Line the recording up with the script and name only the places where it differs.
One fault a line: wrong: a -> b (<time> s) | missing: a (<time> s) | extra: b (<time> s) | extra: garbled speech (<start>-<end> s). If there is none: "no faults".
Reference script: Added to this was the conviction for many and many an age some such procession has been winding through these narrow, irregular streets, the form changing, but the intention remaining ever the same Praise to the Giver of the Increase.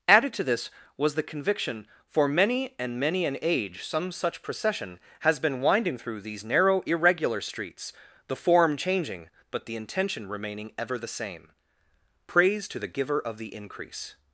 no faults